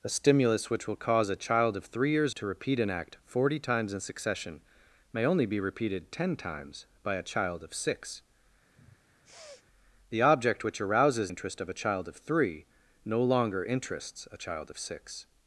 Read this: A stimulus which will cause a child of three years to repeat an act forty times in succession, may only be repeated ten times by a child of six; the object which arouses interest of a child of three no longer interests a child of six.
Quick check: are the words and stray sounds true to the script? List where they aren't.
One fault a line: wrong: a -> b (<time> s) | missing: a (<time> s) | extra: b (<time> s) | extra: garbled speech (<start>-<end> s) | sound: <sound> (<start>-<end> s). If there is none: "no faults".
sound: sniff (8.8-9.7 s)